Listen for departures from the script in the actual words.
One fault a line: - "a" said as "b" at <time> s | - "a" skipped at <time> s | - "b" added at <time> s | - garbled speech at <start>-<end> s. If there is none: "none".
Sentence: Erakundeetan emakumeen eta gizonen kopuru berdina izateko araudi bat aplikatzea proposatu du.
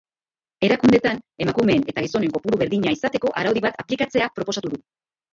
none